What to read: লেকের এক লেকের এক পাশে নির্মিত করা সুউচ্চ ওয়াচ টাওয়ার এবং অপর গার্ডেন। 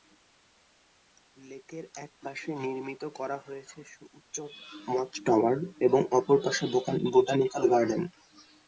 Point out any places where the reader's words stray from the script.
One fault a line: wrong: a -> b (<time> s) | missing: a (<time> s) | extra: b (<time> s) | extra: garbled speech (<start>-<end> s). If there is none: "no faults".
missing: লেকের এক (2.1 s)
extra: হয়েছে (3.5 s)
extra: পাশে বোটানিক্যাল (6.5 s)